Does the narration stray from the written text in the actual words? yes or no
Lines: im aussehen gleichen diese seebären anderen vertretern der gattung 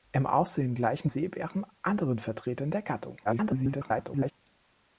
yes